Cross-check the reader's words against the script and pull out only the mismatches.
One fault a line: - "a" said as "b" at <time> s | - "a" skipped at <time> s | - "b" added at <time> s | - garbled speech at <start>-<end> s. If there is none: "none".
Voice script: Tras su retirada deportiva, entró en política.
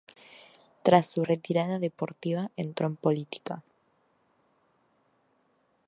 none